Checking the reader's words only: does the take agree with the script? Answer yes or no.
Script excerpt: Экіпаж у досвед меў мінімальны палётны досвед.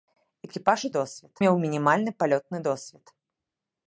yes